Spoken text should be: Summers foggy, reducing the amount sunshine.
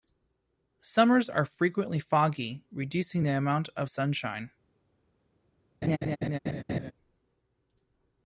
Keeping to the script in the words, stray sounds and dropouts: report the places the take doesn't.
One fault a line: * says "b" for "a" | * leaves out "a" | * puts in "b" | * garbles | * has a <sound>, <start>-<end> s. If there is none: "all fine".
* puts in "are frequently"
* puts in "of"
* has a laugh, 5.8-6.9 s